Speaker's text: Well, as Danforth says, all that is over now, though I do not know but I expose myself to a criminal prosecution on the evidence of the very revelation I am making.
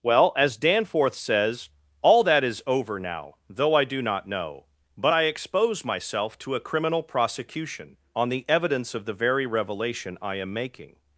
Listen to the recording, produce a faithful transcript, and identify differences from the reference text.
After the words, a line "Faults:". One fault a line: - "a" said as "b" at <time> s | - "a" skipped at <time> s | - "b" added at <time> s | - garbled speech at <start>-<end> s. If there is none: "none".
Well, as Danforth says, all that is over now, though I do not know but I expose myself to a criminal prosecution on the evidence of the very revelation I am making.
Faults:
none